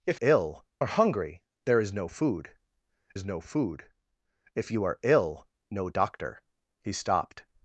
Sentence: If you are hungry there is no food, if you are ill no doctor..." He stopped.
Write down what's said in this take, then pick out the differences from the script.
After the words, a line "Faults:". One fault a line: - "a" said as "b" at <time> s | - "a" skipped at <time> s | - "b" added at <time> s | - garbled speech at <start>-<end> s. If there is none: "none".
If ill are hungry there is no food is no food, if you are ill no doctor..." He stopped.
Faults:
- "you" said as "ill" at 0.2 s
- "is no food" added at 3.1 s